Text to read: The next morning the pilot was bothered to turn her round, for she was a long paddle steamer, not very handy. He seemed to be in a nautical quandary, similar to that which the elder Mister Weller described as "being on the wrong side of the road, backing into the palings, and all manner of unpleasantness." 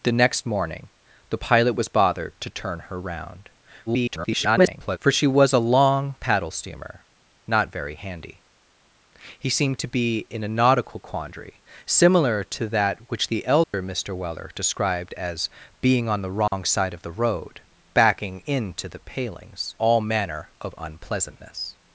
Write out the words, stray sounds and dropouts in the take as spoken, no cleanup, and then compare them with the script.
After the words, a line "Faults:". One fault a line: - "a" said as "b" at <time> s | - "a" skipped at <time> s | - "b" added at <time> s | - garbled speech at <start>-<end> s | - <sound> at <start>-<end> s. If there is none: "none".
The next morning the pilot was bothered to turn her round, [garbled] for she was a long paddle steamer, not very handy. He seemed to be in a nautical quandary, similar to that which the elder Mister Weller described as "being on the wrong side of the road, backing into the palings, all manner of unpleasantness."
Faults:
- garbled speech at 3.9-5.0 s
- dropout at 13.6-13.7 s
- dropout at 16.5-16.5 s
- "and" skipped at 19.7 s